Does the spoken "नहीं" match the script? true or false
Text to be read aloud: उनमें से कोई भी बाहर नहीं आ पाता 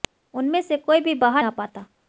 false